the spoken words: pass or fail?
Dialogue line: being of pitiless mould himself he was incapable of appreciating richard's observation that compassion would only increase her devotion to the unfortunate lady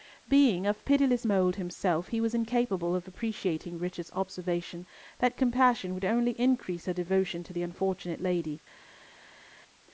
pass